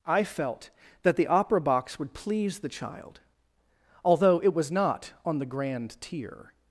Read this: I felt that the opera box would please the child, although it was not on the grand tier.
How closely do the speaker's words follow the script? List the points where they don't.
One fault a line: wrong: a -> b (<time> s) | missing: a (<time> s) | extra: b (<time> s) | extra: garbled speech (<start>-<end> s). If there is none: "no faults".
no faults